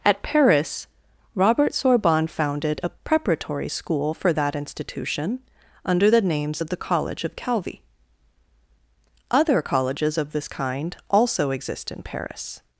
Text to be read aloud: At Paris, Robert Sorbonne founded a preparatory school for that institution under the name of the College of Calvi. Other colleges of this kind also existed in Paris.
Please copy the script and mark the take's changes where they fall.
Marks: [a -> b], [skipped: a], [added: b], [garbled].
At Paris, Robert Sorbonne founded a preparatory school for that institution under the [name -> names] of the College of Calvi. Other colleges of this kind also [existed -> exist] in Paris.